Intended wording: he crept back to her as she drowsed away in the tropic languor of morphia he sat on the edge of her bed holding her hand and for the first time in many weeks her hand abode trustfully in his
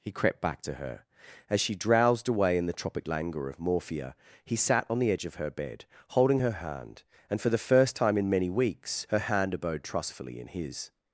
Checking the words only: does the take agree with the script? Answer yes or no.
yes